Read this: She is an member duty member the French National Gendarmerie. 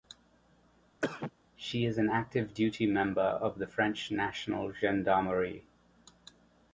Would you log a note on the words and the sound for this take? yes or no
yes